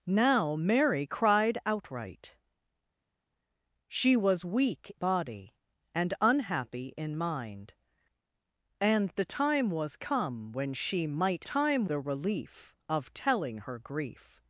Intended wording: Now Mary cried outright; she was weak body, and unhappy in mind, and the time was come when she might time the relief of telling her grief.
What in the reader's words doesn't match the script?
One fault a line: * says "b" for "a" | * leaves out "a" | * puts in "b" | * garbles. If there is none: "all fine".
all fine